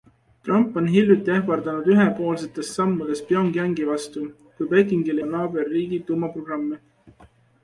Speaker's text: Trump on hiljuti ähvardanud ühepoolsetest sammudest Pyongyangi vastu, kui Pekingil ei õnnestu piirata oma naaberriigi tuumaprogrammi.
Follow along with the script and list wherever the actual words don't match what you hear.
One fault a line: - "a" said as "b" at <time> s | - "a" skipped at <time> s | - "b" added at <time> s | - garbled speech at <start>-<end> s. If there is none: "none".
- "ei õnnestu piirata" skipped at 5.2 s